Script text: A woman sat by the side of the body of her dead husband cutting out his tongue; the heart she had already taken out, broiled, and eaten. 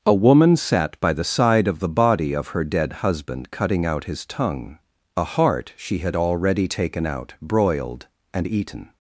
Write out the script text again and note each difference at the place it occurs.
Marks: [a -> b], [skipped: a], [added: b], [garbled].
A woman sat by the side of the body of her dead husband cutting out his tongue; [the -> a] heart she had already taken out, broiled, and eaten.